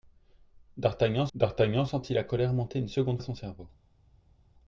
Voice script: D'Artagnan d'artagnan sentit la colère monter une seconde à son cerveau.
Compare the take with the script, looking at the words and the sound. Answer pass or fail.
pass